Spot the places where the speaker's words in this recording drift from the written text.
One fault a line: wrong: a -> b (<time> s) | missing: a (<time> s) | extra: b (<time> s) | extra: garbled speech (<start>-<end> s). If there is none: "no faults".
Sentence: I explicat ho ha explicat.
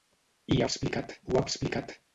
no faults